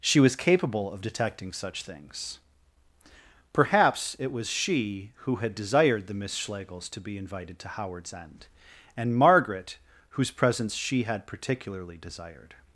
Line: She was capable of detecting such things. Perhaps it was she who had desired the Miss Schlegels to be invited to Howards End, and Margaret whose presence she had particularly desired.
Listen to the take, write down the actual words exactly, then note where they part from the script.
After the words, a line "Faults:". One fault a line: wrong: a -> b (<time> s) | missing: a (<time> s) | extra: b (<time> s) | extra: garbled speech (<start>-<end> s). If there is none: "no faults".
She was capable of detecting such things. Perhaps it was she who had desired the Miss Schlegels to be invited to Howards End, and Margaret whose presence she had particularly desired.
Faults:
no faults